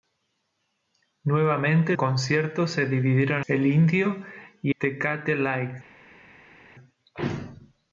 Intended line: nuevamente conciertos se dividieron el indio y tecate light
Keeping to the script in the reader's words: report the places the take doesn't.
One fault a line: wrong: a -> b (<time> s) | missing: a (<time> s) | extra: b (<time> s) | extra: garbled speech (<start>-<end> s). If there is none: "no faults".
no faults